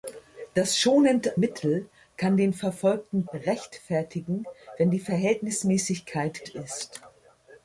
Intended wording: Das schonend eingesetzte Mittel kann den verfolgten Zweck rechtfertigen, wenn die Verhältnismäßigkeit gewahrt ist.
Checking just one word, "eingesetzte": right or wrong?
wrong